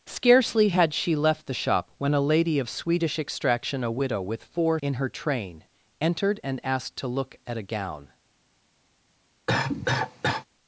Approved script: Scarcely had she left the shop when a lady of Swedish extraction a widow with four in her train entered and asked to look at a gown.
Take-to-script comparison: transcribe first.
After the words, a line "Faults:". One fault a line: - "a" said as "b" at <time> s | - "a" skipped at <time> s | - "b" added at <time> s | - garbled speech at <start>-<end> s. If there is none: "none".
Scarcely had she left the shop when a lady of Swedish extraction a widow with four in her train entered and asked to look at a gown.
Faults:
none